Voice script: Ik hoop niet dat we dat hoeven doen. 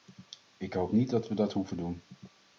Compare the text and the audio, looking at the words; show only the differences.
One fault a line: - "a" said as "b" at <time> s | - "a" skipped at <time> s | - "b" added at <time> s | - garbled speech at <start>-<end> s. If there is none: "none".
none